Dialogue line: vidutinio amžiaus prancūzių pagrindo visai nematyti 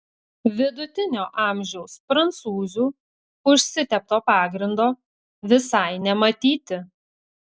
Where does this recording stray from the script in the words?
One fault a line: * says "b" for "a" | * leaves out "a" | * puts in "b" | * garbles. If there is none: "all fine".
* puts in "užsitepto"